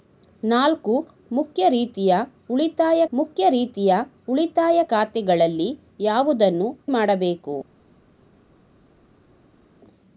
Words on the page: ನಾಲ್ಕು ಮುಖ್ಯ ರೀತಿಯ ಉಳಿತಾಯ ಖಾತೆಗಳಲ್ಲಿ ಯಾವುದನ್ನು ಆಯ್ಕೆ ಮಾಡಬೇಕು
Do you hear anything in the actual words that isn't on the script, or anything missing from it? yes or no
yes